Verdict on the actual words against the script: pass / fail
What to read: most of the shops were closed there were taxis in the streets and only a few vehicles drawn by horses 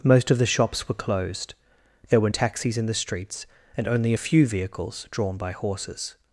pass